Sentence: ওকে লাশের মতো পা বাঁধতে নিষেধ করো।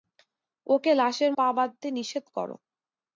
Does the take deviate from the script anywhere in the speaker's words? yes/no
yes